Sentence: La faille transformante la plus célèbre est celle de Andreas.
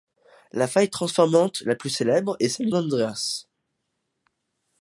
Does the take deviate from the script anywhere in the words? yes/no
no